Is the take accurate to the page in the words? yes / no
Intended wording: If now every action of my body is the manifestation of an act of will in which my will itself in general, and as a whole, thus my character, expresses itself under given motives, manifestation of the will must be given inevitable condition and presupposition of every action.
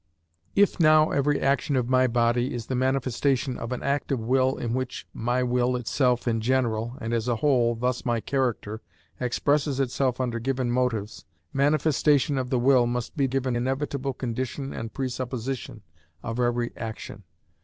yes